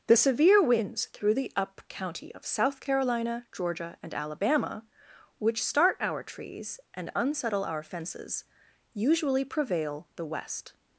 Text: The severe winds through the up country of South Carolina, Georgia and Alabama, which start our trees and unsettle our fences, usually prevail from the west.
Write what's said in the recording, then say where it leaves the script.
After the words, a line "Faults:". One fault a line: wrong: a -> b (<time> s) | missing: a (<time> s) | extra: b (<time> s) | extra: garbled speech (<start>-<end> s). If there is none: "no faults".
The severe winds through the up county of South Carolina, Georgia and Alabama, which start our trees and unsettle our fences, usually prevail the west.
Faults:
wrong: country -> county (1.9 s)
missing: from (10.1 s)